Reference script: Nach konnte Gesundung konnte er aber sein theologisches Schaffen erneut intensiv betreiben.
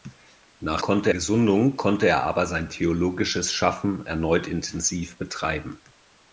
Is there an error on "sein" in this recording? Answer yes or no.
no